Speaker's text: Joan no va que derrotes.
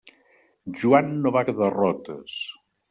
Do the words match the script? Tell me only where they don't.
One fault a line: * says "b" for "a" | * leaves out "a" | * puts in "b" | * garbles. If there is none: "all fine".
all fine